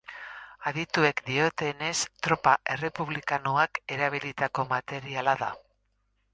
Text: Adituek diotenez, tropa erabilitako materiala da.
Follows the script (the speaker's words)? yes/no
no